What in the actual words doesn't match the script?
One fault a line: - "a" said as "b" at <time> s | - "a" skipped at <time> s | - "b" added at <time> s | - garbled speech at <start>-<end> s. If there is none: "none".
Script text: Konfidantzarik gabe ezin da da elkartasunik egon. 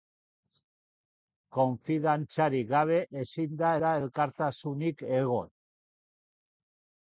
none